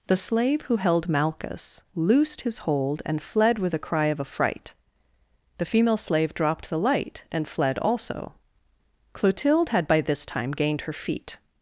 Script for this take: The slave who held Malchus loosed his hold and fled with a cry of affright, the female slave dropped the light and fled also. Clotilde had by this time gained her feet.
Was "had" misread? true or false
false